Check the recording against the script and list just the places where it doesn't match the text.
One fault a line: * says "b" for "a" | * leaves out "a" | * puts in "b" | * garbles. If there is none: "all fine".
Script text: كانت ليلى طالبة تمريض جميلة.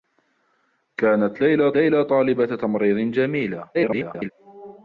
* puts in "ليلى"
* garbles